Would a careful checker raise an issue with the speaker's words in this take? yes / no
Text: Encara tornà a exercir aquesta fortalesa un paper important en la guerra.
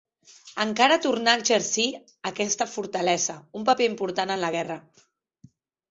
no